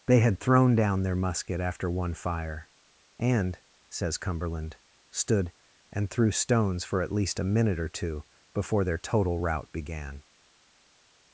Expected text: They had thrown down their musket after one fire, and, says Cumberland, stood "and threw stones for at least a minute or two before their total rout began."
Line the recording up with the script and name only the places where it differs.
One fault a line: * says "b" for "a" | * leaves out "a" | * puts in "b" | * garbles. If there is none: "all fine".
all fine